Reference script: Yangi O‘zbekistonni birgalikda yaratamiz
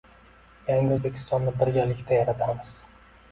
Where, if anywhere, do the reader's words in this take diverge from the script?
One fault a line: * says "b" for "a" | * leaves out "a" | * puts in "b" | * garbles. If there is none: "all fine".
all fine